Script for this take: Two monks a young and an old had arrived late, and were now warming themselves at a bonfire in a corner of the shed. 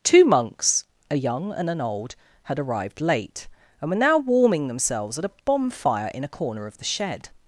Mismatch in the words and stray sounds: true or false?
false